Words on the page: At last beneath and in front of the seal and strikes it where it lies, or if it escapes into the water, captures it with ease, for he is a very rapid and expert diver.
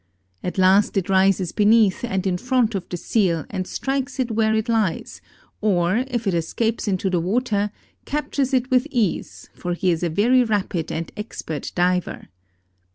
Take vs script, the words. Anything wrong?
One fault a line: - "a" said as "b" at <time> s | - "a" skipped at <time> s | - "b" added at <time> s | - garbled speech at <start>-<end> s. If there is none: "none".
- "it rises" added at 1.0 s